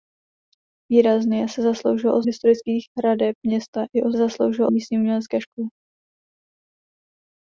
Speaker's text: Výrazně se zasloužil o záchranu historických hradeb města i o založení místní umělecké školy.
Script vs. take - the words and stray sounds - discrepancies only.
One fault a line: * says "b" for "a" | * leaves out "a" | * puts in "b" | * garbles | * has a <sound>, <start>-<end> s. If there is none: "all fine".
* leaves out "záchranu"
* says "zasloužil" for "založení"